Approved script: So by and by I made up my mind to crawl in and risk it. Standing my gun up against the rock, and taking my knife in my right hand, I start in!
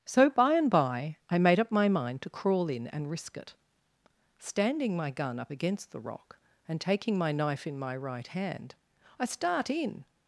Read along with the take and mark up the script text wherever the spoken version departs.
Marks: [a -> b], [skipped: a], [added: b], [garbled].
So by and by I made up my mind to crawl in and risk it. Standing my gun up against the rock, and taking my knife in my right hand, I start in!